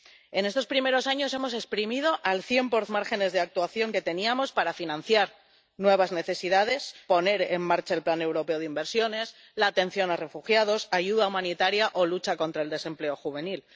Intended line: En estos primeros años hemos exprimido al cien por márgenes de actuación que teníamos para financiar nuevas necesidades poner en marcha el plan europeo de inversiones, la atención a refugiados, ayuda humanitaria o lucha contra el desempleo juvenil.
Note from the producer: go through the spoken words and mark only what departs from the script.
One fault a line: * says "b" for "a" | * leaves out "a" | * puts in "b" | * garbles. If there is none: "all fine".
all fine